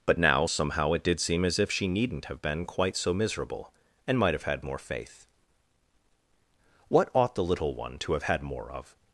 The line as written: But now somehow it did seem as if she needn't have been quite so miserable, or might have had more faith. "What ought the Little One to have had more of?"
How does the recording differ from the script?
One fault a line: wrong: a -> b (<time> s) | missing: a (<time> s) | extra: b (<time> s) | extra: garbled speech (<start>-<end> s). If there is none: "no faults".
wrong: or -> and (4.1 s)